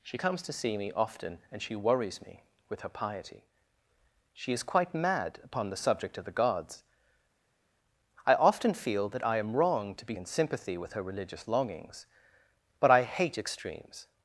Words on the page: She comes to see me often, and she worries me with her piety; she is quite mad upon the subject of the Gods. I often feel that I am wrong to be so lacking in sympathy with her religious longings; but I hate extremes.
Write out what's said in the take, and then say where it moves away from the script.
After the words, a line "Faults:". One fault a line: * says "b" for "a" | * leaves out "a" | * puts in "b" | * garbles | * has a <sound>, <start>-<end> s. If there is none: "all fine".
She comes to see me often, and she worries me with her piety; she is quite mad upon the subject of the Gods. I often feel that I am wrong to be in sympathy with her religious longings; but I hate extremes.
Faults:
* leaves out "so lacking"